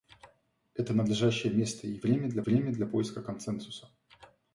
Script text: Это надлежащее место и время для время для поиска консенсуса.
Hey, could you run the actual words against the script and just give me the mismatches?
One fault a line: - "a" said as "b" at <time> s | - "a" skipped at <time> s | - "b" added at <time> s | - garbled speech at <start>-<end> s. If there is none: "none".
none